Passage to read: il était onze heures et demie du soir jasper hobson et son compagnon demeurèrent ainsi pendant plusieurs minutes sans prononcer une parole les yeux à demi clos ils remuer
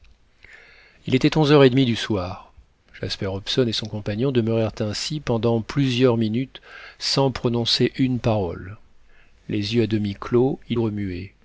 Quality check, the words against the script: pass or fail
pass